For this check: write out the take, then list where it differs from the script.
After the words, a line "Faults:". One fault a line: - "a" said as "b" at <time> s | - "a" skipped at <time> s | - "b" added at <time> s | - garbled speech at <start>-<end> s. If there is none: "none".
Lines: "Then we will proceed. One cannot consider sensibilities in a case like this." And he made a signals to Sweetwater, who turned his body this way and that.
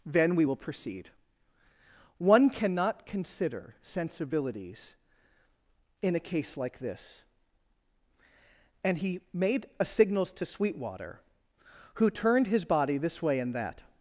"Then we will proceed. One cannot consider sensibilities in a case like this." And he made a signals to Sweetwater, who turned his body this way and that.
Faults:
none